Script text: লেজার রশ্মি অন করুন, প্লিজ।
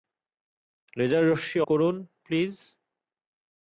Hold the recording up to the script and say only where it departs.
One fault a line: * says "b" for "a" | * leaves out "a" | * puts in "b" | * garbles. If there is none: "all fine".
* leaves out "অন"